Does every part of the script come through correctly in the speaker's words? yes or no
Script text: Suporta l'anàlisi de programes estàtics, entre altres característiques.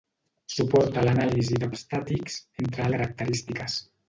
no